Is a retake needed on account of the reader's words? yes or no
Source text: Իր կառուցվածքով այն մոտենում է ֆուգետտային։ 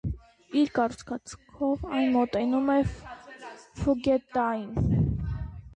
no